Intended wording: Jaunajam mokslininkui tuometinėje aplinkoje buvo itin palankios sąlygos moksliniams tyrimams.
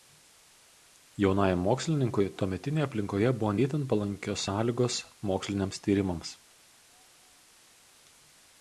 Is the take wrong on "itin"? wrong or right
right